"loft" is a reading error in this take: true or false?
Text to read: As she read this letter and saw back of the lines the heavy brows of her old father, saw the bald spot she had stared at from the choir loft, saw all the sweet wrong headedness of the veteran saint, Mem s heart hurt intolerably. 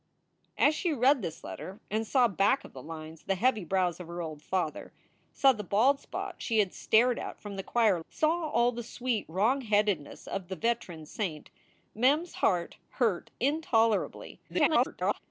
true